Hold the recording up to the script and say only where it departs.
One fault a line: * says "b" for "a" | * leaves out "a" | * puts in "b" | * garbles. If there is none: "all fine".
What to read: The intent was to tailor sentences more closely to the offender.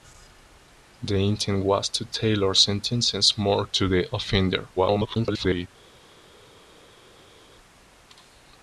* leaves out "closely"
* garbles